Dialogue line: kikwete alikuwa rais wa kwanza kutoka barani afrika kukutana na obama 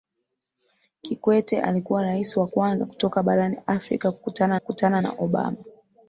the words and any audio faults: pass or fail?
fail